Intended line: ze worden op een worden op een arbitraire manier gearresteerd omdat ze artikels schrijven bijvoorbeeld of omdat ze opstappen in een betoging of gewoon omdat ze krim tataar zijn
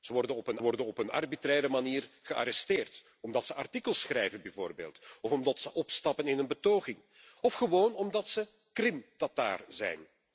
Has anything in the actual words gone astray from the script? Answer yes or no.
no